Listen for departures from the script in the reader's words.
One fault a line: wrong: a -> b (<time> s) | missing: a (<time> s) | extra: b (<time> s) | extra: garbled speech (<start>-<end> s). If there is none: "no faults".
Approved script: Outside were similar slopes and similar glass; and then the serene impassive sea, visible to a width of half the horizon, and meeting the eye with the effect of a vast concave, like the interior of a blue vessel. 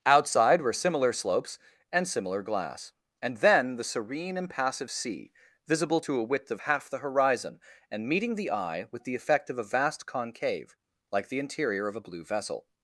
no faults